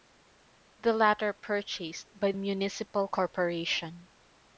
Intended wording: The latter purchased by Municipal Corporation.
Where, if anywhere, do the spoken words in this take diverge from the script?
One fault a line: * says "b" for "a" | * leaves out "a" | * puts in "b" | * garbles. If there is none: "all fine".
all fine